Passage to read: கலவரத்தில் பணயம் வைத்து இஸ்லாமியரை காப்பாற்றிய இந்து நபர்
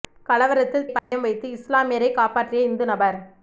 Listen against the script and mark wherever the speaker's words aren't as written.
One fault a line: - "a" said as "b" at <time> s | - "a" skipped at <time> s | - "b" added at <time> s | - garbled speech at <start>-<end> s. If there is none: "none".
none